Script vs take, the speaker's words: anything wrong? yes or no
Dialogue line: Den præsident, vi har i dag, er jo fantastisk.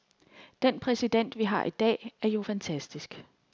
no